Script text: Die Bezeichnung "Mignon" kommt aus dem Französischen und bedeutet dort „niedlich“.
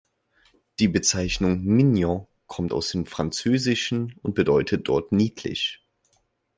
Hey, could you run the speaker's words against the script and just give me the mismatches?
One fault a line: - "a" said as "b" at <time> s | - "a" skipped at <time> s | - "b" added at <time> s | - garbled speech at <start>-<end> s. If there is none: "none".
none